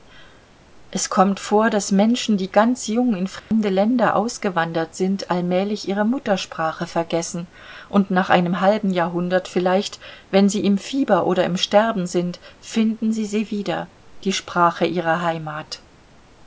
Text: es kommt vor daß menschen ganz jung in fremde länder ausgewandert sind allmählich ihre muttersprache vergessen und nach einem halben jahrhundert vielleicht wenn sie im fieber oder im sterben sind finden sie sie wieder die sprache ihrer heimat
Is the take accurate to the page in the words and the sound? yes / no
no